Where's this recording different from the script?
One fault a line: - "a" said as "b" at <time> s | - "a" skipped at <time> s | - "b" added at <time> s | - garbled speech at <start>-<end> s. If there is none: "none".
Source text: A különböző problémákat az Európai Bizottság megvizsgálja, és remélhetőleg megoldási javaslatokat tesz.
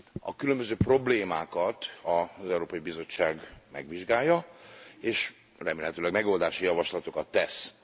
none